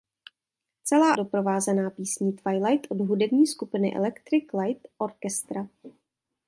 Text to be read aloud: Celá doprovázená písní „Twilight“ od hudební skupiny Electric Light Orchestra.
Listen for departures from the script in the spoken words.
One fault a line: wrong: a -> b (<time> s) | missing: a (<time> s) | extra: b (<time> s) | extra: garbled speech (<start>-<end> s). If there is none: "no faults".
no faults